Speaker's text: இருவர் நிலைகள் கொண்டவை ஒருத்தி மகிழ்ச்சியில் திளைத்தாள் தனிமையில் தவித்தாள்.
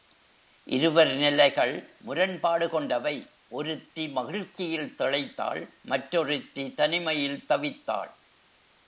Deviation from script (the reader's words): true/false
true